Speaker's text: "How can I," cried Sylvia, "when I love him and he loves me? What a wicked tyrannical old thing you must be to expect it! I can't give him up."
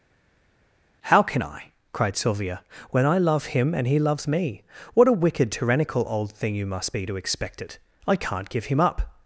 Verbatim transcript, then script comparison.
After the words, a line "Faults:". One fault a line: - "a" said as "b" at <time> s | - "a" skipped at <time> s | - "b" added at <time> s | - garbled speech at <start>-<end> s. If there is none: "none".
"How can I," cried Sylvia, "when I love him and he loves me? What a wicked tyrannical old thing you must be to expect it! I can't give him up."
Faults:
none